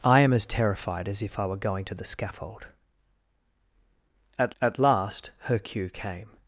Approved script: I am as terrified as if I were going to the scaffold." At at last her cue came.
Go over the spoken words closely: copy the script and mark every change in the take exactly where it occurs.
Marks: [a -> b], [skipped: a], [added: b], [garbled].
I am as terrified as if I were going to the scaffold." At at last her cue came.